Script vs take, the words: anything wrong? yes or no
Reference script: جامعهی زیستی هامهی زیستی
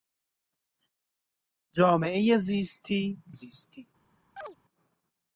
yes